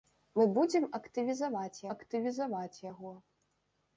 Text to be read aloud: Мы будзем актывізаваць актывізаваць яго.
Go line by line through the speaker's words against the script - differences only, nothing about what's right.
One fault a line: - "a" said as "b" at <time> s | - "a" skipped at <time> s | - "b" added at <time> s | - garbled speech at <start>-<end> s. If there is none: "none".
none